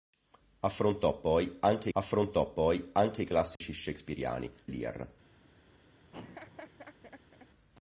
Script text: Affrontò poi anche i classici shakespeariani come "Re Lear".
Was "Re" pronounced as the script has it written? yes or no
no